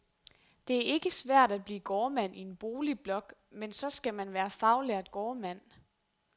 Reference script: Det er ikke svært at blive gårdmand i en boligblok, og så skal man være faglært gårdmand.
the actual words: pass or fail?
fail